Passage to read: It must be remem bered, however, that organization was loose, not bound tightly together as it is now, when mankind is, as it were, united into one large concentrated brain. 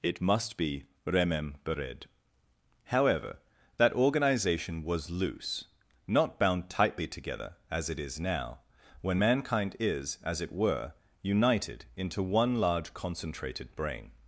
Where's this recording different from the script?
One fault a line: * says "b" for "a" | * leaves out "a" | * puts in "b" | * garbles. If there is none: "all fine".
all fine